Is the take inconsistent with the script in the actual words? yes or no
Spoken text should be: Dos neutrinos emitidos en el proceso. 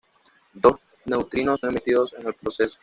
no